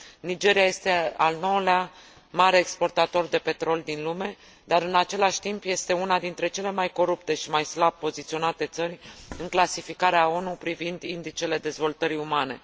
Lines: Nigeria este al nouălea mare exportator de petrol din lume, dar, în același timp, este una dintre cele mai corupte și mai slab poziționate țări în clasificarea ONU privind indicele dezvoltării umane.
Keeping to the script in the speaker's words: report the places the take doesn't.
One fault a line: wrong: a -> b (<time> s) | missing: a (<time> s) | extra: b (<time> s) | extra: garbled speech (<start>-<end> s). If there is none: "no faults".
no faults